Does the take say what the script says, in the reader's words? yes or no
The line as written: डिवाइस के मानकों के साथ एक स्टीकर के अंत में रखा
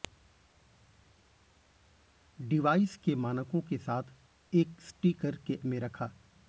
no